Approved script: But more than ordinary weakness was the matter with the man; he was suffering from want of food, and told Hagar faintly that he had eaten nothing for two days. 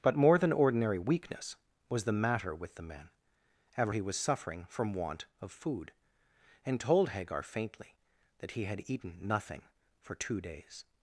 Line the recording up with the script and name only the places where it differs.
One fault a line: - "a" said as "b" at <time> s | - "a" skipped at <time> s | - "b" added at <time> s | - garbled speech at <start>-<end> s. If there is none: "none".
- "ever" added at 3.8 s